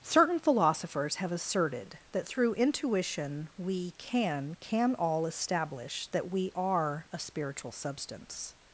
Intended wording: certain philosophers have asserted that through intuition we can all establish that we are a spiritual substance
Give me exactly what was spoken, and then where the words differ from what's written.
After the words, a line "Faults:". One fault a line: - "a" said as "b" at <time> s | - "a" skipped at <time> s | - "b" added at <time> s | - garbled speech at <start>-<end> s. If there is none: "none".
certain philosophers have asserted that through intuition we can can all establish that we are a spiritual substance
Faults:
- "can" added at 4.6 s